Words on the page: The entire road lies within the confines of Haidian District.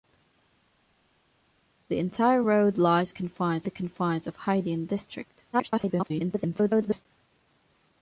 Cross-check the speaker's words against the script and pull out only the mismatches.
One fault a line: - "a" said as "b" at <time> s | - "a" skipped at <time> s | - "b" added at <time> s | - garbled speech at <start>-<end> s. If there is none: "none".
- "within" said as "confines" at 3.1 s
- garbled speech at 5.5-7.1 s